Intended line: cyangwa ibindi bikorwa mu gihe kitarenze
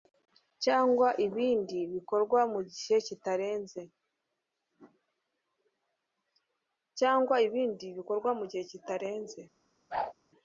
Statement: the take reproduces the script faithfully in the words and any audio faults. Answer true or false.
false